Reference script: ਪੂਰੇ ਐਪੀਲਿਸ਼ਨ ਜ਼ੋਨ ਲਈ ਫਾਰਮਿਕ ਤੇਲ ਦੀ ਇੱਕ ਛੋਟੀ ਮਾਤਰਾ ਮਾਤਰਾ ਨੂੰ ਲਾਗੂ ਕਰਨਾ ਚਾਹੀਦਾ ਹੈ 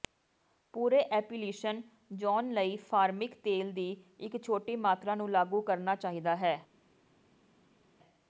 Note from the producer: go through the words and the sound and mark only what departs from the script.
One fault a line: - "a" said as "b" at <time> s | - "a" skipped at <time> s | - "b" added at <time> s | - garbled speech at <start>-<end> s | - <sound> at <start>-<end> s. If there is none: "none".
- "ਮਾਤਰਾ" skipped at 5.2 s